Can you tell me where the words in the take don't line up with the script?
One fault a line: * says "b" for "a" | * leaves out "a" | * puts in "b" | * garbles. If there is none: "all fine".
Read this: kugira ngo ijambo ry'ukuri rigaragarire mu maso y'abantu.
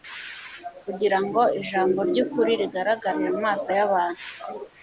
all fine